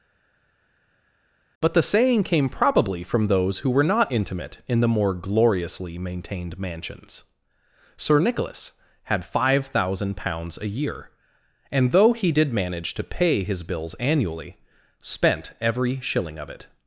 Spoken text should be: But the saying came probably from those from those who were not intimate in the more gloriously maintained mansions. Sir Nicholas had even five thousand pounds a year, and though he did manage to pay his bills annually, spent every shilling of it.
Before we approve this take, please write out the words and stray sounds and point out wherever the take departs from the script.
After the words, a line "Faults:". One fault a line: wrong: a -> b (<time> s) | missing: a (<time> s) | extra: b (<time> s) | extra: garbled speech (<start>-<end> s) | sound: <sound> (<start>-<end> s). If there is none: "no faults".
But the saying came probably from those who were not intimate in the more gloriously maintained mansions. Sir Nicholas had five thousand pounds a year, and though he did manage to pay his bills annually, spent every shilling of it.
Faults:
missing: from those (3.6 s)
missing: even (9.2 s)